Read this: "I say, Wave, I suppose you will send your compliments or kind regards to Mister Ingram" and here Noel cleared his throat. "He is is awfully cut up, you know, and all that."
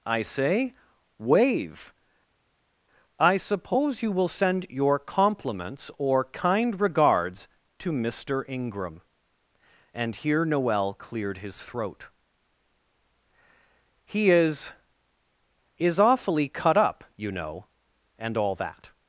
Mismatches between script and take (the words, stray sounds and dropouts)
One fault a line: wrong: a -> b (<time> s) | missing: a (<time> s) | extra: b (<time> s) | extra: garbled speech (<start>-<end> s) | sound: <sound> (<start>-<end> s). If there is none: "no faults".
no faults